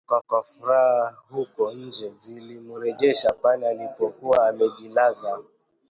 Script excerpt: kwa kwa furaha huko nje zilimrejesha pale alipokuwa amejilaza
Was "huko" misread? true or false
false